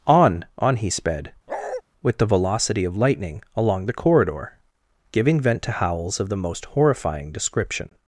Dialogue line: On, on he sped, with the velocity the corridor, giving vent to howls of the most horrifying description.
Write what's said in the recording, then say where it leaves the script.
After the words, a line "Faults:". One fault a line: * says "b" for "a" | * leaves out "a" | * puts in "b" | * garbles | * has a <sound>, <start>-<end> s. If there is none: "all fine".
On, on he sped, with the velocity of lightning, along the corridor, giving vent to howls of the most horrifying description.
Faults:
* has a bark, 1.5-1.8 s
* puts in "of lightning along"